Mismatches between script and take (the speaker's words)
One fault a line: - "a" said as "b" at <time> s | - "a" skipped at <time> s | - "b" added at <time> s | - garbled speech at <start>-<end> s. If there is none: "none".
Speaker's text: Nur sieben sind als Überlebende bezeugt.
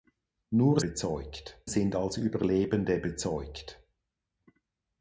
- "sieben" said as "bezeugt" at 0.8 s